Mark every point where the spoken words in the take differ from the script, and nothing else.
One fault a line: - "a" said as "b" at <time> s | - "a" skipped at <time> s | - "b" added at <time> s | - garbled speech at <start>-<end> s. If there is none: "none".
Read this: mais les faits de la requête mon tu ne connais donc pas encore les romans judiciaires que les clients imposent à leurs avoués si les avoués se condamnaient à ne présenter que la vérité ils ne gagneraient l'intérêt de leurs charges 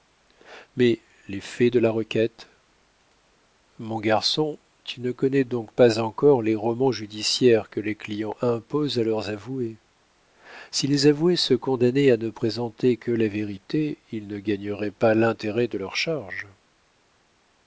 - "garçon" added at 4.0 s
- "pas" added at 14.9 s